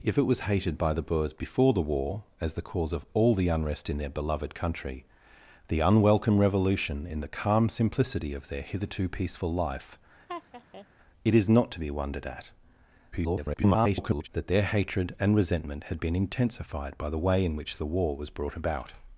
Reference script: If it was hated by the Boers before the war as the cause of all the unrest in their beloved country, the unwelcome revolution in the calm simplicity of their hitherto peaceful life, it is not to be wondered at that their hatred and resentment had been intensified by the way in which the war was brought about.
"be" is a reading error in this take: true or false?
false